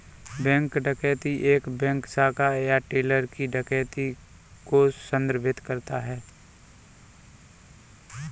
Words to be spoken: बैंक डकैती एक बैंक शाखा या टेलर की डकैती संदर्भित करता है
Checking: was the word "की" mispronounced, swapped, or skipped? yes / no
no